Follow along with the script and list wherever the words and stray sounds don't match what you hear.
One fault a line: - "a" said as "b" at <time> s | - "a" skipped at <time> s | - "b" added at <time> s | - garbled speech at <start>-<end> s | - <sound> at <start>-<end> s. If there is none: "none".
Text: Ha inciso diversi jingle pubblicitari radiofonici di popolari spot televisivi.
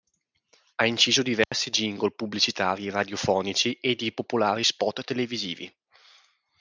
- dropout at 1.4-1.5 s
- "e" added at 3.8 s